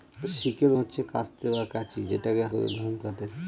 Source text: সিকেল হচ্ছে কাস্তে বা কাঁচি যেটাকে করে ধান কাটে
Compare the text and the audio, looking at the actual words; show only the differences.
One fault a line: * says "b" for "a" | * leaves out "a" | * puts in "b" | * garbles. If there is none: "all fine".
all fine